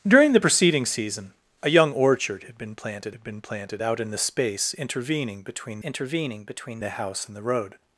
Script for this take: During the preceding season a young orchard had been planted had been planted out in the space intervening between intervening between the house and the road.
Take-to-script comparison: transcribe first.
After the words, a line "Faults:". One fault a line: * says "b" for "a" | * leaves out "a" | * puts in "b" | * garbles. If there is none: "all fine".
During the preceding season a young orchard had been planted had been planted out in the space intervening between intervening between the house and the road.
Faults:
all fine